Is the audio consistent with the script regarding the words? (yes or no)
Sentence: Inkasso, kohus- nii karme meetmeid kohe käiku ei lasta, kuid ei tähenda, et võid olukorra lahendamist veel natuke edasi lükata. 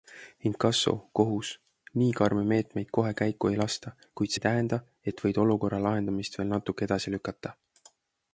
yes